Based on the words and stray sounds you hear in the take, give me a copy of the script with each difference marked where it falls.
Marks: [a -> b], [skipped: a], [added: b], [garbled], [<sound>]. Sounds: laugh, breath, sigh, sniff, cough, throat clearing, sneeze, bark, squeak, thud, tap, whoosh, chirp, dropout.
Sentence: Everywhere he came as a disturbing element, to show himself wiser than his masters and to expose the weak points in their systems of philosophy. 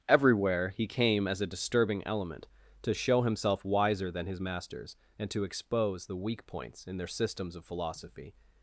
Everywhere he came as a disturbing element, to show himself wiser than his masters and to expose the weak points in their systems of philosophy.